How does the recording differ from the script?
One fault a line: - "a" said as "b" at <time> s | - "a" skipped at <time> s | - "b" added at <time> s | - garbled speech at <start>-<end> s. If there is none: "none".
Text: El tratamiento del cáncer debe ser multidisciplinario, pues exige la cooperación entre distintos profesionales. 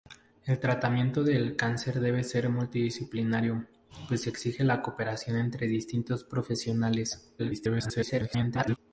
- garbled speech at 7.4-8.8 s